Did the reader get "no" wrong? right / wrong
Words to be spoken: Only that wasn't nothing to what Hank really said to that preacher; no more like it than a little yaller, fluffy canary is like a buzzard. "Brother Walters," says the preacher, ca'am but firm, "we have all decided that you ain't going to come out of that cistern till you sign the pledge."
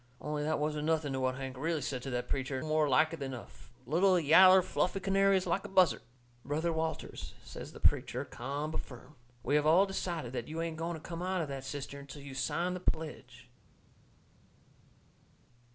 wrong